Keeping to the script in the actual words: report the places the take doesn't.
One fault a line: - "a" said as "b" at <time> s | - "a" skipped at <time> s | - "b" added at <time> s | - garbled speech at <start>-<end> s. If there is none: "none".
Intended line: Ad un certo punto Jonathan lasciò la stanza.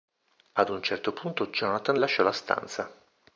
none